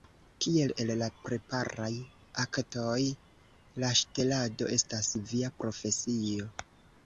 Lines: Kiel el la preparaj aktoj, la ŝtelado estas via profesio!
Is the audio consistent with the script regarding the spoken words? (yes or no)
yes